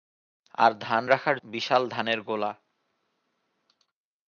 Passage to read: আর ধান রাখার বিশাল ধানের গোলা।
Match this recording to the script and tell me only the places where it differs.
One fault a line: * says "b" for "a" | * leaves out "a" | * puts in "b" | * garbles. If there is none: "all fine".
all fine